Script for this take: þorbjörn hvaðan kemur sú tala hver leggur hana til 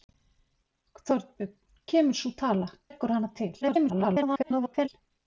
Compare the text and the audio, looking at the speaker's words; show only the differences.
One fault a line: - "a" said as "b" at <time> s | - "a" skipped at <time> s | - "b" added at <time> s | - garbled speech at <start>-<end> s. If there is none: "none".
- "hvaðan" skipped at 1.5 s
- "hver" skipped at 2.7 s
- garbled speech at 3.6-4.9 s